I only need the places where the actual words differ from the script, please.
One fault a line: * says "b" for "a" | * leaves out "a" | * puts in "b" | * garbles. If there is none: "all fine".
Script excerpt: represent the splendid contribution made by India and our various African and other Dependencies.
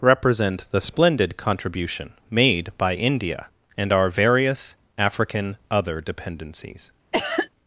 * leaves out "and"